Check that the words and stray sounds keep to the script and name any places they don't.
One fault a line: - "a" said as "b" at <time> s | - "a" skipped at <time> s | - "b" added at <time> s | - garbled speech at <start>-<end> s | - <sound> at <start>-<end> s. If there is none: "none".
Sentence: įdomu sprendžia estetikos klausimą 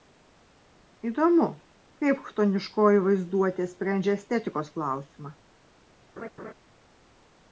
- "kaip chtoniškoji vaizduotė" added at 2.0 s
- laugh at 6.2-6.5 s